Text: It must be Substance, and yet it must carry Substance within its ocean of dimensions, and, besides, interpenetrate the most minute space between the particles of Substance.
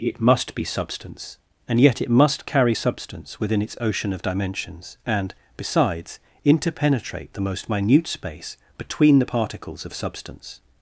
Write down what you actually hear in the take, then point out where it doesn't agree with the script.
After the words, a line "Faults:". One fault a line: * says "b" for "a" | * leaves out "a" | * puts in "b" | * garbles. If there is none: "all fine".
It must be Substance, and yet it must carry Substance within its ocean of dimensions, and, besides, interpenetrate the most minute space between the particles of Substance.
Faults:
all fine